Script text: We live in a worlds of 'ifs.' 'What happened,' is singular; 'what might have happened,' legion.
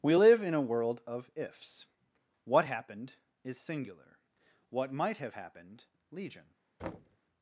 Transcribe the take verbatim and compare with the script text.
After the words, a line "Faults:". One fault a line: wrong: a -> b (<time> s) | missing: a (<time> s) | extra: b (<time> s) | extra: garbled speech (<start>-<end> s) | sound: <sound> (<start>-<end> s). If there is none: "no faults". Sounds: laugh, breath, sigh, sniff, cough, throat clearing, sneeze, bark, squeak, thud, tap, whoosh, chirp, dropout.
We live in a world of 'ifs.' 'What happened,' is singular; 'what might have happened,' legion.
Faults:
wrong: worlds -> world (0.6 s)
sound: thud (6.8-7.2 s)